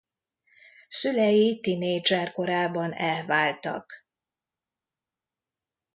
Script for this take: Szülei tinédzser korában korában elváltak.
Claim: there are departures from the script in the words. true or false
true